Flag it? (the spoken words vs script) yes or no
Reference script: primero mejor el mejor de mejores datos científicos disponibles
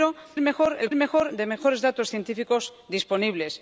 no